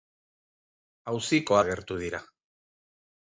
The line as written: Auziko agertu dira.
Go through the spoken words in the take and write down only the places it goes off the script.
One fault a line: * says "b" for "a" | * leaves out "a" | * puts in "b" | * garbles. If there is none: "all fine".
all fine